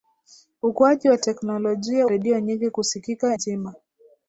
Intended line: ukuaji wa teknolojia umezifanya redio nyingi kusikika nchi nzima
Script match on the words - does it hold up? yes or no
no